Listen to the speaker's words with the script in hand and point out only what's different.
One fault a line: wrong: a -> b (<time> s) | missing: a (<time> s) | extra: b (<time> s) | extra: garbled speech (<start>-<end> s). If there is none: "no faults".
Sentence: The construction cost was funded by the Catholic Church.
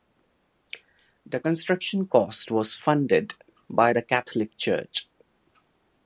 no faults